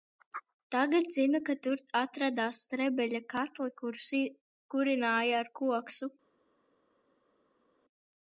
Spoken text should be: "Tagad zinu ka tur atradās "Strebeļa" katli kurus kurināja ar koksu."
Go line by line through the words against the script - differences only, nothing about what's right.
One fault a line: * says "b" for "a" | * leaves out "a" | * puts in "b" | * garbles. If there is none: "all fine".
all fine